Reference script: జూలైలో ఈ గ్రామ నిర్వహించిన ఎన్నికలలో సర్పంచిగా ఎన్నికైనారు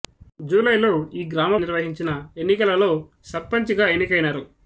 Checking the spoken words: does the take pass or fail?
pass